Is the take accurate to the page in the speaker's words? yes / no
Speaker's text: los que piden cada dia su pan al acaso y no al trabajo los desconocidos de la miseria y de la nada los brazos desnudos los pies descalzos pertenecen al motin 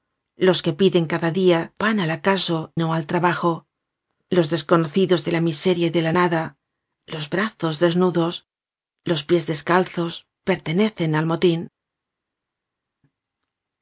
no